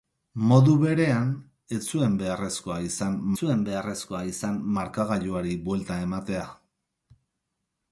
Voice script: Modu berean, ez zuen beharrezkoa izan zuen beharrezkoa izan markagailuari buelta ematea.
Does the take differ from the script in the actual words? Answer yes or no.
no